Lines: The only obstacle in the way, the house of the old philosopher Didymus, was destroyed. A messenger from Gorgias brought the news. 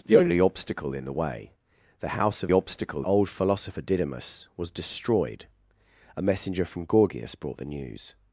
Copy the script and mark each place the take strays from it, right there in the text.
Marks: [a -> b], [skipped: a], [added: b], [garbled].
The only obstacle in the way, the house of [the -> obstacle] old philosopher Didymus, was destroyed. A messenger from Gorgias brought the news.